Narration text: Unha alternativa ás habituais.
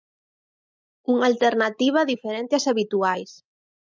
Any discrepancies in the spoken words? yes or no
yes